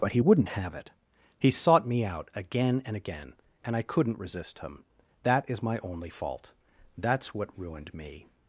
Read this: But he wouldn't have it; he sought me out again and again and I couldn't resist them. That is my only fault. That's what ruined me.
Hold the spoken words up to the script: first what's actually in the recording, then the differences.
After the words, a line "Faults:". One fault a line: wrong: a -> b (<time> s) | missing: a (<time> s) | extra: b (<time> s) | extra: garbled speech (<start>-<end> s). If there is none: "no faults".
But he wouldn't have it; he sought me out again and again and I couldn't resist him. That is my only fault. That's what ruined me.
Faults:
wrong: them -> him (4.6 s)